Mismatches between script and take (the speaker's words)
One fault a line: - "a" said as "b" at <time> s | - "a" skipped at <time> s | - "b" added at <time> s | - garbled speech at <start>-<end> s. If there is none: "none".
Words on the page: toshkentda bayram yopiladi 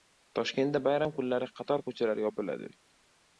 - "kunlari qator ko‘chalar" added at 1.2 s